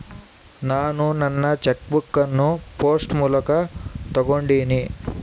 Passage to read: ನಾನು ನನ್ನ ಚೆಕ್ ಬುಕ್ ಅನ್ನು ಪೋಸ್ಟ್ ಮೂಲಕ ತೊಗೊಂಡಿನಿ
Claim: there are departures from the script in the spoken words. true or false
false